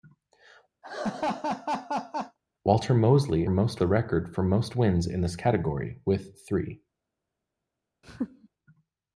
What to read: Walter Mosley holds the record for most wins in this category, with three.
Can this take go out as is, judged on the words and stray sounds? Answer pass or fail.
fail